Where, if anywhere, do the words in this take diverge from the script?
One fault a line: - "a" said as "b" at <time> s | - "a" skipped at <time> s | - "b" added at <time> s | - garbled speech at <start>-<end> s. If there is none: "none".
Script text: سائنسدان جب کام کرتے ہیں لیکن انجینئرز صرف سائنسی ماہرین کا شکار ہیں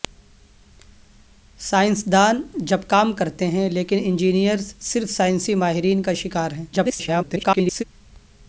- garbled speech at 6.7-7.8 s